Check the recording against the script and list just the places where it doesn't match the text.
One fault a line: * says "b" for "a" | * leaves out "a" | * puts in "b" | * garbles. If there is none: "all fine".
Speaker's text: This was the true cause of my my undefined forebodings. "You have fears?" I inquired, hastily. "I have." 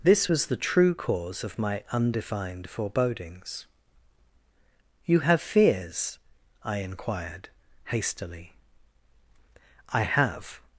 * leaves out "my"